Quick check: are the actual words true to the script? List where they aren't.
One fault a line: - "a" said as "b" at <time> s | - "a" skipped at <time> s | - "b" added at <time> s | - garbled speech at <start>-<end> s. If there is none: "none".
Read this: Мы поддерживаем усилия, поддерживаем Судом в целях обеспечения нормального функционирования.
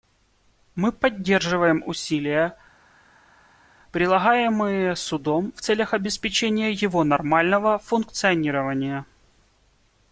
- "поддерживаем" said as "прилагаемые" at 3.9 s
- "его" added at 6.7 s